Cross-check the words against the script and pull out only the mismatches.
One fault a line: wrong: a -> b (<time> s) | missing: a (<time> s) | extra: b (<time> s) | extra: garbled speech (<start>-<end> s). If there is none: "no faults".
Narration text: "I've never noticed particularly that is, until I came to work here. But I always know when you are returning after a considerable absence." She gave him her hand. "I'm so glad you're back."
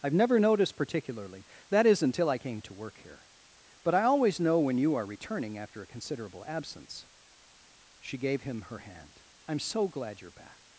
no faults